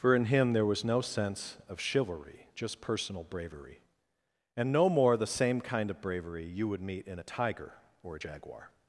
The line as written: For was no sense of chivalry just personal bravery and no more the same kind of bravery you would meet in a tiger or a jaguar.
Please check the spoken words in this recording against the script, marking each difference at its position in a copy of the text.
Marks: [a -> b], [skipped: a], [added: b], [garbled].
For [added: in him there] was no sense of chivalry just personal bravery and no more the same kind of bravery you would meet in a tiger or a jaguar.